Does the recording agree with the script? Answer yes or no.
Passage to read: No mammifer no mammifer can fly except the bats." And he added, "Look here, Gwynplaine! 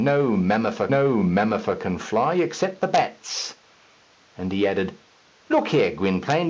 yes